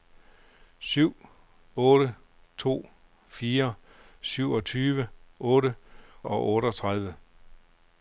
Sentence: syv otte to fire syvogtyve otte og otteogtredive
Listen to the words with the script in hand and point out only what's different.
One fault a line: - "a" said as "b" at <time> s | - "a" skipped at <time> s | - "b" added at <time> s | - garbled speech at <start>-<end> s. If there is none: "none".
none